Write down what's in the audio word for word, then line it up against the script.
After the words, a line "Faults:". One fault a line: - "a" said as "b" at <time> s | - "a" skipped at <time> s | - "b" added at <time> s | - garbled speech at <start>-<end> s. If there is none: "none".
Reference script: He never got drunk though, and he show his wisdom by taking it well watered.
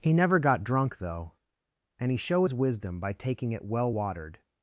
He never got drunk though, and he show his wisdom by taking it well watered.
Faults:
none